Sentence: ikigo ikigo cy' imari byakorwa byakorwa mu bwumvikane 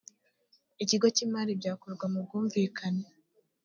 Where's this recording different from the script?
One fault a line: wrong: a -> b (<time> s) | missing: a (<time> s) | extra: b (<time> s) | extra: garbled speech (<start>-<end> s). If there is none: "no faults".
missing: ikigo (1.1 s)
missing: byakorwa (2.0 s)